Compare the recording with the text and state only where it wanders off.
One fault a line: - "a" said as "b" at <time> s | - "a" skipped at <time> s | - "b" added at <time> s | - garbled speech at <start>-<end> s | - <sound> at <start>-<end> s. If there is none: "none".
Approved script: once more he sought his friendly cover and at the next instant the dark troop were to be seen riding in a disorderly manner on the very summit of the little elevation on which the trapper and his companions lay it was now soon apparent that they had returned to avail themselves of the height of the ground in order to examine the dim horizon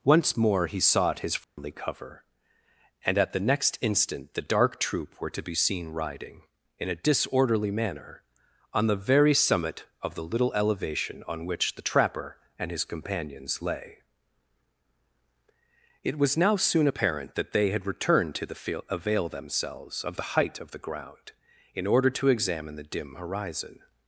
- dropout at 1.4-1.6 s
- "the field" added at 18.4 s